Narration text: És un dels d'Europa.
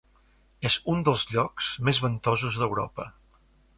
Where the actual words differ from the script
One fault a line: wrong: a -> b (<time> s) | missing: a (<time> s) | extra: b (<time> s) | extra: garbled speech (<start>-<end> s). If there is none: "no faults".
extra: llocs més ventosos (1.3 s)